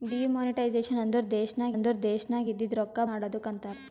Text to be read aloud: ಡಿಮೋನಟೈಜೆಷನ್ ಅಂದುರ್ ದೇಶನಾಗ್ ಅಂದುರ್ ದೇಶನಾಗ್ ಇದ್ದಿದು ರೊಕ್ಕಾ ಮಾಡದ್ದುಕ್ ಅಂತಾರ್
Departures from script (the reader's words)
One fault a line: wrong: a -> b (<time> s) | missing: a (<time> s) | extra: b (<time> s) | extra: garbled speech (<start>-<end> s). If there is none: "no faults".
no faults